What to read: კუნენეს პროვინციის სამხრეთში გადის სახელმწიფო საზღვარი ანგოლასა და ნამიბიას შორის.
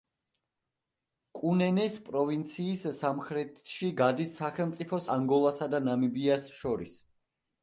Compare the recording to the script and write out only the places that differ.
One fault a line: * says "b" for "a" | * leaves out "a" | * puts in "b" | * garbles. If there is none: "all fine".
* leaves out "საზღვარი"